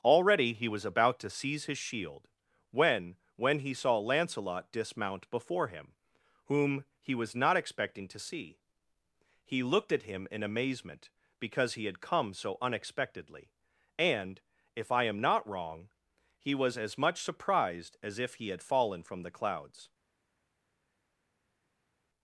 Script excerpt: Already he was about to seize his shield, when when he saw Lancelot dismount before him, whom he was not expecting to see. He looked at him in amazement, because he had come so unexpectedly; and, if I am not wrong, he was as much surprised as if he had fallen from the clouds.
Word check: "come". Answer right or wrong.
right